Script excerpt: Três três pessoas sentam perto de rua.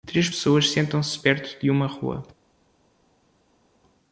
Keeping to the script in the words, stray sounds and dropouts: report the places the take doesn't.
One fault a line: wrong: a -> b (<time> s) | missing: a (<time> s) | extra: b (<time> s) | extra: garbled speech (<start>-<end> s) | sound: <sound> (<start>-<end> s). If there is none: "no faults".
missing: três (0.3 s)
extra: se (1.0 s)
extra: uma (1.7 s)